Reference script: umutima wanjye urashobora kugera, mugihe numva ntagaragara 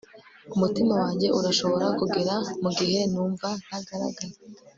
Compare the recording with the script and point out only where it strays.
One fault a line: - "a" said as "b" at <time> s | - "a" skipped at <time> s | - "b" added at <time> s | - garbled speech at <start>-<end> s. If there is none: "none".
none